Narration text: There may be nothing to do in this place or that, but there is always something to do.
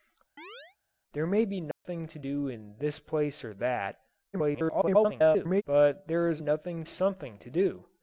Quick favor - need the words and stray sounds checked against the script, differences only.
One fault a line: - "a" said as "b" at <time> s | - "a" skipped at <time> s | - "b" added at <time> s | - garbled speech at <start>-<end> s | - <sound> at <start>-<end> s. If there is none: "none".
- chirp at 0.4-0.8 s
- dropout at 1.7-1.9 s
- garbled speech at 4.3-5.6 s
- "always" said as "nothing" at 6.4 s